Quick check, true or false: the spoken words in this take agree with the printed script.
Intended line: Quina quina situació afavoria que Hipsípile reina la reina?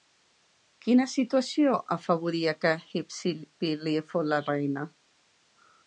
false